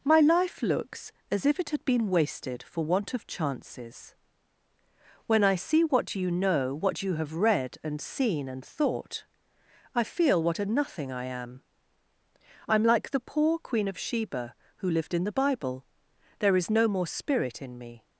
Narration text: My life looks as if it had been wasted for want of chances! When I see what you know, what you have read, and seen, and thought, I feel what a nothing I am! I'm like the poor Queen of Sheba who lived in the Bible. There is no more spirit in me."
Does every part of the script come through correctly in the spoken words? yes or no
yes